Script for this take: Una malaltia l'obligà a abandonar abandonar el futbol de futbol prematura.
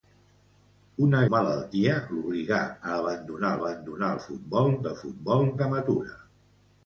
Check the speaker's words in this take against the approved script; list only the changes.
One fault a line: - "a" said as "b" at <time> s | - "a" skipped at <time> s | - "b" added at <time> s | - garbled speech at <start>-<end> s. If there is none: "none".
none